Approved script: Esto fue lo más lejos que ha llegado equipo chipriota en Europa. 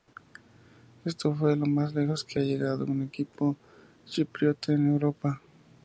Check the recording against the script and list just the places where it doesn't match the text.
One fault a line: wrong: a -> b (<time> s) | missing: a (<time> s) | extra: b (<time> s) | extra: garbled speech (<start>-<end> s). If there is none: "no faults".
extra: un (2.8 s)